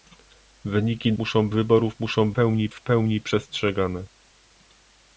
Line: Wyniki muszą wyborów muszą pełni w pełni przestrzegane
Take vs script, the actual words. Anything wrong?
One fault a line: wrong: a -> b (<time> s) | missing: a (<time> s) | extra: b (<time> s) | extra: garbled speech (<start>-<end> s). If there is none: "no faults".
no faults